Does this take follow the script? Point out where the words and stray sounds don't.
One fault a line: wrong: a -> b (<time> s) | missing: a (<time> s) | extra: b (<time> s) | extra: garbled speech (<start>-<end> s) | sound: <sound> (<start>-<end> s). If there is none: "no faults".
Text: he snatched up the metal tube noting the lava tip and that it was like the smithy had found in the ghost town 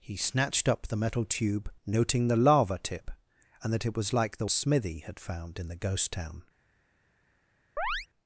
sound: chirp (7.8-8.1 s)